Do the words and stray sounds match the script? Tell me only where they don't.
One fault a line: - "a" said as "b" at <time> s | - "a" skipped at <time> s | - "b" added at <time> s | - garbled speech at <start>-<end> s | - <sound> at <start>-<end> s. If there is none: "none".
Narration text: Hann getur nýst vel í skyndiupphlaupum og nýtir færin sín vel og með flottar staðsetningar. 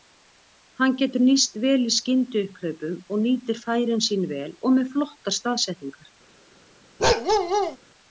- bark at 7.0-7.8 s